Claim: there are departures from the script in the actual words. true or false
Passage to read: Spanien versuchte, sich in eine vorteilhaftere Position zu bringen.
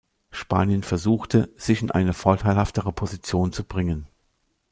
false